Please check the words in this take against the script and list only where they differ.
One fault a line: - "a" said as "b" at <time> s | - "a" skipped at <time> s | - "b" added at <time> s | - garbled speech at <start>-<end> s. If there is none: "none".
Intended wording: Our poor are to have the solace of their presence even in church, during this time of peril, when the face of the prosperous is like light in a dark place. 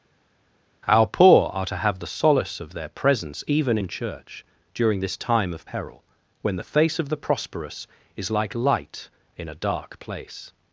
none